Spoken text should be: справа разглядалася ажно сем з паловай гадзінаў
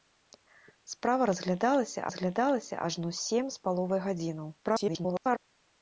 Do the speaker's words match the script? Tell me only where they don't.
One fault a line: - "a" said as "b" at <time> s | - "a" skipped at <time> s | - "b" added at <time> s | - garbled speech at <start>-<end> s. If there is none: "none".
- "разглядалася" added at 2.1 s
- garbled speech at 4.6-5.4 s